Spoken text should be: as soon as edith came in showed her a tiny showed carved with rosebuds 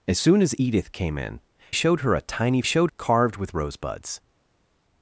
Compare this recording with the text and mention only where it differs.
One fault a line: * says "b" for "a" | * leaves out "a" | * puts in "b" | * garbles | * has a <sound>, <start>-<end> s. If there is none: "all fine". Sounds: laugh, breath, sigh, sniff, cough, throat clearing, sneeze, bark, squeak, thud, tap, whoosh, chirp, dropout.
all fine